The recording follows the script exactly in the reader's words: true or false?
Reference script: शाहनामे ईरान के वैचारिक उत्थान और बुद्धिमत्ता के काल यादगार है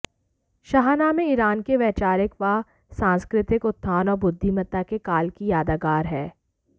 false